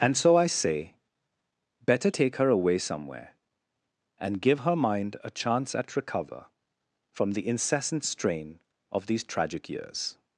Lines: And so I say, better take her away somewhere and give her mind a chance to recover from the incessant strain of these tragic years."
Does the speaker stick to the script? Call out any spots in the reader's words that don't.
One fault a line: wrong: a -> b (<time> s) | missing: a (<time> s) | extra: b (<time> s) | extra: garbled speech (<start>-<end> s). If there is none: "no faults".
wrong: to -> at (5.7 s)